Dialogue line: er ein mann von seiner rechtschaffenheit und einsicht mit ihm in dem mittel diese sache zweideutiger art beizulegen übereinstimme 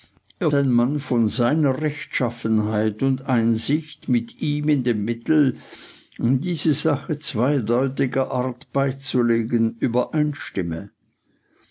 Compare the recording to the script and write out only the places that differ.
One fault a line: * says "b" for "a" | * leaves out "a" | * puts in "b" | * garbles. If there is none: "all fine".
all fine